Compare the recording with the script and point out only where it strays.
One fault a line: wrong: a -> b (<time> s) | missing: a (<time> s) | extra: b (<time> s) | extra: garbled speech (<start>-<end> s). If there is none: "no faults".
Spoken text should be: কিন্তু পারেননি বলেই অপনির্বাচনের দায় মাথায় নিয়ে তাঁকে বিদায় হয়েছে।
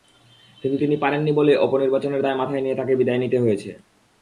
extra: তিনি (0.8 s)
extra: নিতে (3.2 s)